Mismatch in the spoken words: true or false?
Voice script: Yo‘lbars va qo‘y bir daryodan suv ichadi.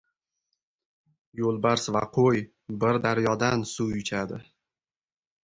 false